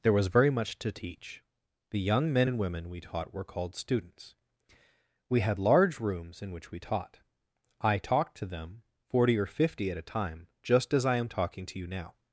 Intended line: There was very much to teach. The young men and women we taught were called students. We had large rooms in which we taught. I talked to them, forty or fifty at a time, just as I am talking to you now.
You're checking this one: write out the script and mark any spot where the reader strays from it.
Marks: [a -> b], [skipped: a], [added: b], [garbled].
There was very much to teach. The young men and women we taught were called students. We had large rooms in which we taught. I talked to them, forty or fifty at a time, just as I am talking to you now.